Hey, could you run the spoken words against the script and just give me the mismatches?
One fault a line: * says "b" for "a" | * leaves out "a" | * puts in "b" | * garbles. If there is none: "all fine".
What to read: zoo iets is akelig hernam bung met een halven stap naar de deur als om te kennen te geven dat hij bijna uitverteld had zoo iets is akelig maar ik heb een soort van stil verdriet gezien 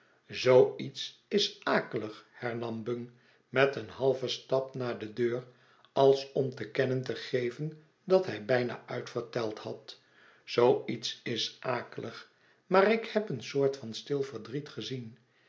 all fine